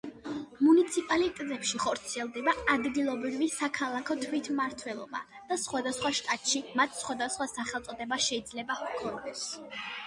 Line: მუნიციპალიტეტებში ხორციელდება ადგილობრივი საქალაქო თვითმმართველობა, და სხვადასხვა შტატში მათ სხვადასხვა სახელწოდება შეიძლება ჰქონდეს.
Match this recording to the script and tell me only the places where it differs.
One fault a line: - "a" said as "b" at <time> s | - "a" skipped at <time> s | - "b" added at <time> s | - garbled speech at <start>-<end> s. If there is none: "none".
none